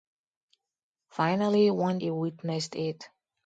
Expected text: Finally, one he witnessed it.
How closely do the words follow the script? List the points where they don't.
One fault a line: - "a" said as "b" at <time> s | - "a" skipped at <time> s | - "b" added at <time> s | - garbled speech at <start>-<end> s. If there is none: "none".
none